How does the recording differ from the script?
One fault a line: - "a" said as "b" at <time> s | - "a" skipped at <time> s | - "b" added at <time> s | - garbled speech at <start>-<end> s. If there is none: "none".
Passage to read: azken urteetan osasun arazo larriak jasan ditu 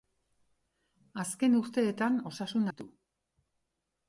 - "arazo larriak jasan" skipped at 2.6 s